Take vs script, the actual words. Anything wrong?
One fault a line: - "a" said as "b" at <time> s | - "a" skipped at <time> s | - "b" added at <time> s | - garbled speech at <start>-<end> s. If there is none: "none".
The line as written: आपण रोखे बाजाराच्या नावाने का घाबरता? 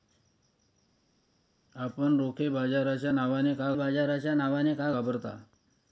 - "बाजाराच्या नावाने का" added at 3.7 s